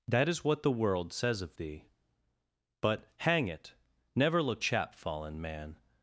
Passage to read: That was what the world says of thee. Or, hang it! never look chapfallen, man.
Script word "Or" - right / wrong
wrong